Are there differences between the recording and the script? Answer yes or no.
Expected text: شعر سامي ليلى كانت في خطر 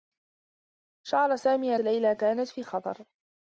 no